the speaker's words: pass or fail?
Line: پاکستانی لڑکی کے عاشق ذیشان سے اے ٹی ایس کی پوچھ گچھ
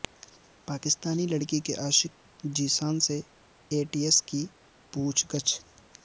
pass